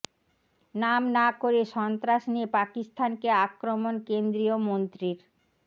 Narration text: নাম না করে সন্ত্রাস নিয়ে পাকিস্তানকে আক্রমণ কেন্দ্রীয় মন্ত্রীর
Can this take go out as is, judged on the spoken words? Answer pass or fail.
pass